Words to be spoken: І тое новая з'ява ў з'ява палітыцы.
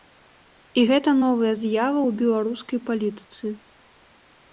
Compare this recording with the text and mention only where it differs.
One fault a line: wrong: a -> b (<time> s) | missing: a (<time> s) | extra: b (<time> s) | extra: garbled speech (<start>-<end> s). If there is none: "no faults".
wrong: тое -> гэта (0.9 s)
wrong: з'ява -> беларускай (2.2 s)